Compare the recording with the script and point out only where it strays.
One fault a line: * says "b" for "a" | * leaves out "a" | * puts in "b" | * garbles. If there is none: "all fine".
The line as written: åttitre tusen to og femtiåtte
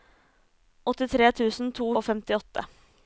all fine